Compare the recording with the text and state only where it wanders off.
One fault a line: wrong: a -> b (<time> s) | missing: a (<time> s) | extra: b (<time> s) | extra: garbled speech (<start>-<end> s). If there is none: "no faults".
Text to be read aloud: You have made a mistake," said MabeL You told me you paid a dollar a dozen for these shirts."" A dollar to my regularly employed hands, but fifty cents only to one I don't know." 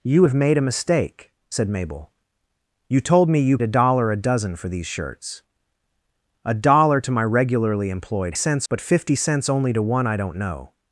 missing: paid (3.6 s)
wrong: hands -> cents (8.3 s)